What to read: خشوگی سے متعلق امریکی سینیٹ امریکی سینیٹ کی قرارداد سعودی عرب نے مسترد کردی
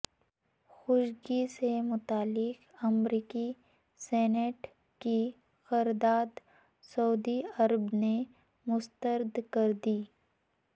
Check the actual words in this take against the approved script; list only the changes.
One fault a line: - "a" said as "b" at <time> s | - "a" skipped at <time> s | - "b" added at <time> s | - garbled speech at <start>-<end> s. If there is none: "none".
- "امریکی سینیٹ" skipped at 4.7 s